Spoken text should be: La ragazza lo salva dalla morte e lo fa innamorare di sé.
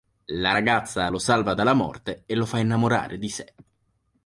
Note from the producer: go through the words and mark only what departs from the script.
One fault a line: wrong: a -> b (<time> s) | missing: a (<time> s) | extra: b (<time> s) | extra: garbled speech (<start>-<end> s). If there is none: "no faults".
no faults